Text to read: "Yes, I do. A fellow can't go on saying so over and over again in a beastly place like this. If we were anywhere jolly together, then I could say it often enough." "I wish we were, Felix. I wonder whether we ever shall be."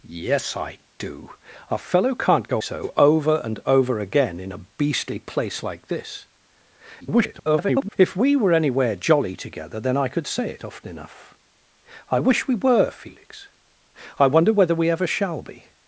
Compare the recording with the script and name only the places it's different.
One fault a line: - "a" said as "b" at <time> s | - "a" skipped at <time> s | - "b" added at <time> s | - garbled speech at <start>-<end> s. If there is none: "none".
- "on saying" skipped at 2.6 s
- garbled speech at 7.0-8.0 s